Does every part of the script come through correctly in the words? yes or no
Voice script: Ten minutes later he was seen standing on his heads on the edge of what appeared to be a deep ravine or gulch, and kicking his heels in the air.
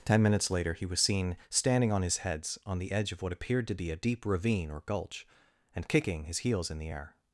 yes